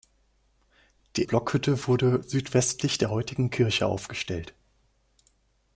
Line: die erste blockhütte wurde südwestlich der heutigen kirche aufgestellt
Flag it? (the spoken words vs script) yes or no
yes